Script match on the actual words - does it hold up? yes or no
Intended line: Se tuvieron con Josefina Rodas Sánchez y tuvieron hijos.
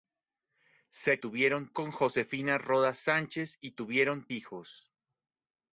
yes